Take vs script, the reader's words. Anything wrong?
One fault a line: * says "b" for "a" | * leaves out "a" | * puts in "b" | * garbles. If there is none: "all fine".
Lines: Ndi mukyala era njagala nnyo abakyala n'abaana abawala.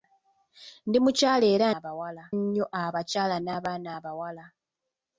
* says "abawala" for "njagala"